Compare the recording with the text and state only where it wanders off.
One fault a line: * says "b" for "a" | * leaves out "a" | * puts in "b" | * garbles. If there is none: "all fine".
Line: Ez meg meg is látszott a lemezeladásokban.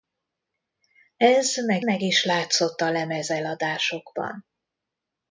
all fine